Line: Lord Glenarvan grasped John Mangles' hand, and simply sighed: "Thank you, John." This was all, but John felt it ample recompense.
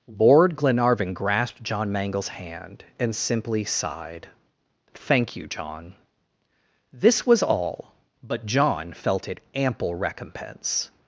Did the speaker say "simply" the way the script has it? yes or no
yes